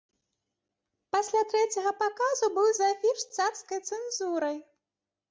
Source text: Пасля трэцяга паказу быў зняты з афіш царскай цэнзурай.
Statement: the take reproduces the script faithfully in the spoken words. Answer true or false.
false